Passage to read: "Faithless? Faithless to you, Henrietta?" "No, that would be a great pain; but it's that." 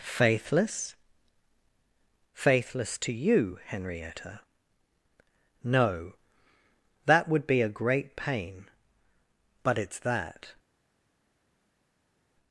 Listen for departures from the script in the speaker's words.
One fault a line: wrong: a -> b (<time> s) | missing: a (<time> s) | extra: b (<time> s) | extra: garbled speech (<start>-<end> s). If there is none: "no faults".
no faults